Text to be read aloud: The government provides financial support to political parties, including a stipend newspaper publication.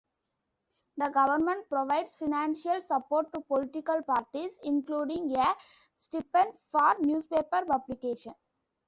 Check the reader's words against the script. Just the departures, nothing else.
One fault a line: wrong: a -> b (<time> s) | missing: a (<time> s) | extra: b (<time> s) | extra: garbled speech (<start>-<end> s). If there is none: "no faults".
extra: for (6.7 s)